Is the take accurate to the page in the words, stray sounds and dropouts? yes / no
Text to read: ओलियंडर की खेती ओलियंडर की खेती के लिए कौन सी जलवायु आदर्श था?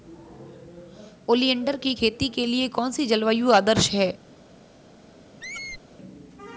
no